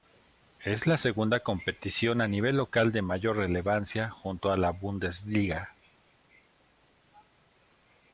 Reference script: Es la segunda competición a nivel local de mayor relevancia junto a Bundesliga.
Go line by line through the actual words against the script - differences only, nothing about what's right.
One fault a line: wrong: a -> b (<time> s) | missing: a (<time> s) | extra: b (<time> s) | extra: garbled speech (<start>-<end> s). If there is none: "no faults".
extra: la (4.6 s)